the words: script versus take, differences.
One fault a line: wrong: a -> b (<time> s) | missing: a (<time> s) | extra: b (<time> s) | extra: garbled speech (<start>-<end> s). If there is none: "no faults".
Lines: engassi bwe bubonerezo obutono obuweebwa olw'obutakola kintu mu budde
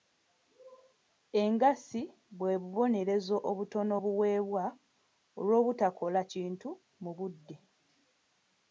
no faults